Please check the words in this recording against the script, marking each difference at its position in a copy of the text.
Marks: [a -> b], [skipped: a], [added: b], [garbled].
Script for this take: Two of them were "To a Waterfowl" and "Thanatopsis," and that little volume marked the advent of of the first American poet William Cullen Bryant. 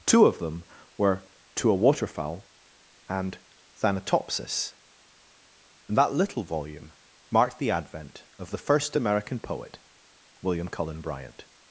Two of them were "To a Waterfowl" and "Thanatopsis," and that little volume marked the advent of [skipped: of] the first American poet William Cullen Bryant.